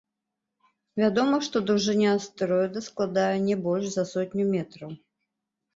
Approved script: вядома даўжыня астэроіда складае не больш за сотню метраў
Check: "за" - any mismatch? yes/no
no